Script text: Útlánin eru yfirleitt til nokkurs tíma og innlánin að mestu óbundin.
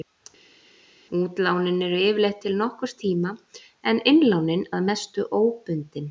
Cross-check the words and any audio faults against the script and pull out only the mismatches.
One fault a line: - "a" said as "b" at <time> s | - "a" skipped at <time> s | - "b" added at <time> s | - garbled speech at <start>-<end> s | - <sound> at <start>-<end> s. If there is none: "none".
- "og" said as "en" at 3.9 s